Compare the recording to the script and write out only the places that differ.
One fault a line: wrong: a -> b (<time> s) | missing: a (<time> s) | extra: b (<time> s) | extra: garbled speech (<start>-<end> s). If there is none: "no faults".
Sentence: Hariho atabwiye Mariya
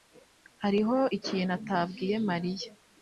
extra: ikintu (1.2 s)